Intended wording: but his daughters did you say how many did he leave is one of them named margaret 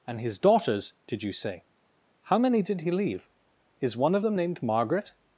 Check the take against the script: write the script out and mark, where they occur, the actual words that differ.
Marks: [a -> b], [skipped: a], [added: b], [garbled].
[but -> and] his daughters did you say how many did he leave is one of them named margaret